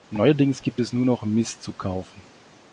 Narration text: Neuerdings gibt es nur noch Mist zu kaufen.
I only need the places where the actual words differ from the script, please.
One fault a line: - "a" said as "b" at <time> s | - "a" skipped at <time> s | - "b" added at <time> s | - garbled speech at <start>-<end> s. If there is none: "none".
none